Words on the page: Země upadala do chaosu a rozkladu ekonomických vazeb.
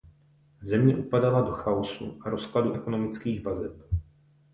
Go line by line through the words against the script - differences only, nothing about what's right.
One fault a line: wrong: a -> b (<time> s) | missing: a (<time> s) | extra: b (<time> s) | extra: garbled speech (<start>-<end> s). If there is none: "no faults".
no faults